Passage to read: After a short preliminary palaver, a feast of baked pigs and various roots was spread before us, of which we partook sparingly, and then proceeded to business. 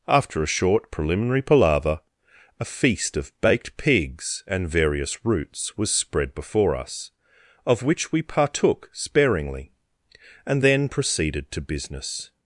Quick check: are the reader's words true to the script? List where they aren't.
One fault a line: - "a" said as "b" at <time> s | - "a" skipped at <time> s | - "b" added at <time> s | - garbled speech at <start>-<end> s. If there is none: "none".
none